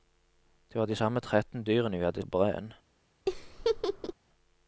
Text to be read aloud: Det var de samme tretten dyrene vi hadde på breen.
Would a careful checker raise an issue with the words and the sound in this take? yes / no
yes